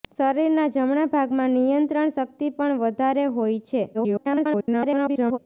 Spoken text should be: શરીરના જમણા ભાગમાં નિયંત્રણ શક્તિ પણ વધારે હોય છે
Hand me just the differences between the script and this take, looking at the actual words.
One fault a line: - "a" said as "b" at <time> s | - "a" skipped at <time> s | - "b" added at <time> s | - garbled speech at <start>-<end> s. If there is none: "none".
- garbled speech at 3.9-5.4 s